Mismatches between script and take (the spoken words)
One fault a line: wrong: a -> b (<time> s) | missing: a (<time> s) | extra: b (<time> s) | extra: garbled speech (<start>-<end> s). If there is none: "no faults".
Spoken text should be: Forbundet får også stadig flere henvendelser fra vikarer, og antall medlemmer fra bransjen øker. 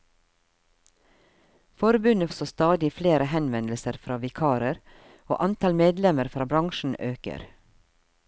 missing: får (2.3 s)